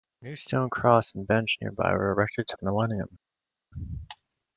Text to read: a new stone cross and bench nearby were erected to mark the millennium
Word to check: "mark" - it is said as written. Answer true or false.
false